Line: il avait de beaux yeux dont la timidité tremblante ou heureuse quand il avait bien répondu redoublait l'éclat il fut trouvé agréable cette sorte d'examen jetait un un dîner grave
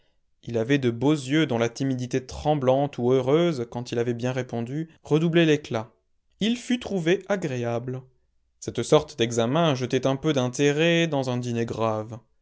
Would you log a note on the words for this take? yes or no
yes